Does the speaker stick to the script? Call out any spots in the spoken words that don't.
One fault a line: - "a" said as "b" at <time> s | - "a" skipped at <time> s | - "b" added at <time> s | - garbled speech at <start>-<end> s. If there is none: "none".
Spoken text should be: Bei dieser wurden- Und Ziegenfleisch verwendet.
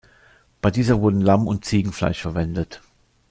- "Lamm" added at 1.2 s